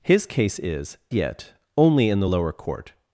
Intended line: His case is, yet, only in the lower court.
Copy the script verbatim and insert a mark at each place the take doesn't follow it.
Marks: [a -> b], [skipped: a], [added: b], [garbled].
His case is, yet, only in the lower court.